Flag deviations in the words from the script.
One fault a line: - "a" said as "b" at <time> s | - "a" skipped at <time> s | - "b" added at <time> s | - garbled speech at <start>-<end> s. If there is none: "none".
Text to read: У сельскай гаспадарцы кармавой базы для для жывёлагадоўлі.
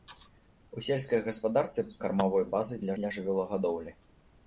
none